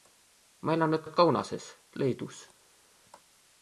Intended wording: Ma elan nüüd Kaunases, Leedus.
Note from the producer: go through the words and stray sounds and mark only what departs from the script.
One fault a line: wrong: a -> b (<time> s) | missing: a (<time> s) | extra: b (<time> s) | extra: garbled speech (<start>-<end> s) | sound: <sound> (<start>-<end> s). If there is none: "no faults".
extra: nüüd (1.0 s)